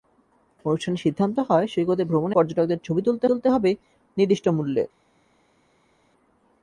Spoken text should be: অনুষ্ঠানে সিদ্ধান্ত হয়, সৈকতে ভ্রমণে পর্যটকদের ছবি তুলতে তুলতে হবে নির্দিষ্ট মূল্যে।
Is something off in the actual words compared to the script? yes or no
no